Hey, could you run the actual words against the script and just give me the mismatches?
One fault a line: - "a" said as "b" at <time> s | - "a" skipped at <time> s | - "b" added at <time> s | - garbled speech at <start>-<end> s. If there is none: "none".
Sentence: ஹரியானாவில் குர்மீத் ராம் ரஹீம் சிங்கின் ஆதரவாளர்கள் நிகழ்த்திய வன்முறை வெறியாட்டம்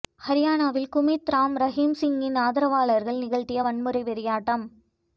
none